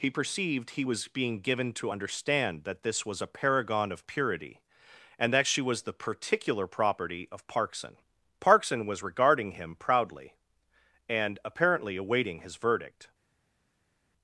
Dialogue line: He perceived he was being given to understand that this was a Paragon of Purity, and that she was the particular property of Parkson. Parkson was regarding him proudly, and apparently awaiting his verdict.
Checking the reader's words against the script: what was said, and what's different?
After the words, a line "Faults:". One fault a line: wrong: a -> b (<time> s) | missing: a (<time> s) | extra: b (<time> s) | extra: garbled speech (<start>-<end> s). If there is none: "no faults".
He perceived he was being given to understand that this was a Paragon of Purity, and that she was the particular property of Parkson. Parkson was regarding him proudly, and apparently awaiting his verdict.
Faults:
no faults